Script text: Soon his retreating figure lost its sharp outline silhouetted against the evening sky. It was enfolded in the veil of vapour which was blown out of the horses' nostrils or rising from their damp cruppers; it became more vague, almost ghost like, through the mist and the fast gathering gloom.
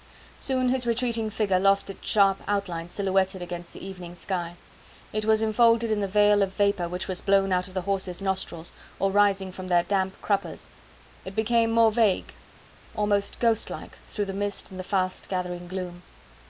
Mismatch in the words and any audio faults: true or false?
false